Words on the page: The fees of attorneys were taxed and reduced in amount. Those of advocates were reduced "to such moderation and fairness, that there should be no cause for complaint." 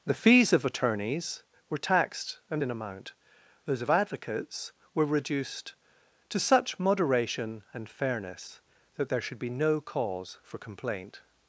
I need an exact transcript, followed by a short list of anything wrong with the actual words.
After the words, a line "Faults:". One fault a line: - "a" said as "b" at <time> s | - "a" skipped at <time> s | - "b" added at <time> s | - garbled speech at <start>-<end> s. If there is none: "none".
The fees of attorneys were taxed and in amount. Those of advocates were reduced "to such moderation and fairness, that there should be no cause for complaint."
Faults:
- "reduced" skipped at 2.6 s